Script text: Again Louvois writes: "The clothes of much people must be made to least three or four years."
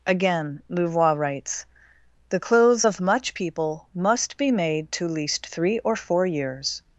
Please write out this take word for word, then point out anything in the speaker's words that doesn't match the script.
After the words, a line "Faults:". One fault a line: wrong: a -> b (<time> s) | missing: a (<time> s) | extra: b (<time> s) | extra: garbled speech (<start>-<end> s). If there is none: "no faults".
Again Louvois writes: "The clothes of much people must be made to least three or four years."
Faults:
no faults